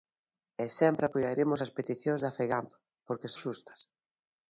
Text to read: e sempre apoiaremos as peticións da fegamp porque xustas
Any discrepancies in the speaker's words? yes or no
no